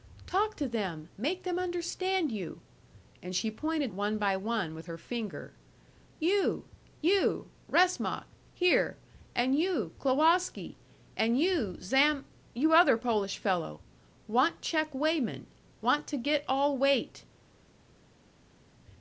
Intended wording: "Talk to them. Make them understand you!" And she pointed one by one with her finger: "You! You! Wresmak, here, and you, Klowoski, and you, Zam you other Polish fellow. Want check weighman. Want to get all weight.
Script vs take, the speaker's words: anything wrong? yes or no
no